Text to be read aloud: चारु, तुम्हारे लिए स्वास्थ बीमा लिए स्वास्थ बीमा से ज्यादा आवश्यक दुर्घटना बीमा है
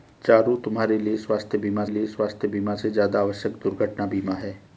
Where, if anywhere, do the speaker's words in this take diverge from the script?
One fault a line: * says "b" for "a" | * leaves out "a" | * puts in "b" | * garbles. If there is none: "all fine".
all fine